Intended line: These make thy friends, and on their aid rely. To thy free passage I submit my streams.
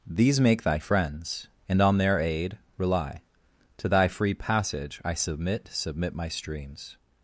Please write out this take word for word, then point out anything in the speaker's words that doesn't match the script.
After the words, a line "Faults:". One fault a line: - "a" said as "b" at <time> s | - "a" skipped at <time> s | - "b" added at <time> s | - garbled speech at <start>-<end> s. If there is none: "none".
These make thy friends, and on their aid rely. To thy free passage I submit submit my streams.
Faults:
- "submit" added at 5.7 s